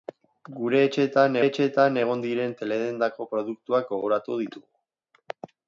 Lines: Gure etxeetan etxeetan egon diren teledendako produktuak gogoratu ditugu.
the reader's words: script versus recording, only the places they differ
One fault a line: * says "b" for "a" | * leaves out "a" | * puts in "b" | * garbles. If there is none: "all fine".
all fine